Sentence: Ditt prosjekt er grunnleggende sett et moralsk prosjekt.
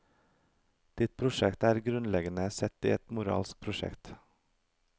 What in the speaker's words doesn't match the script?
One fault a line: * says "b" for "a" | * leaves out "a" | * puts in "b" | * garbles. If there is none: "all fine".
all fine